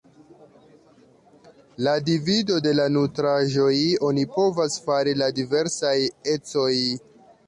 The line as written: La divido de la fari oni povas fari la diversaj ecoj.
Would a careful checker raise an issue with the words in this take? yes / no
yes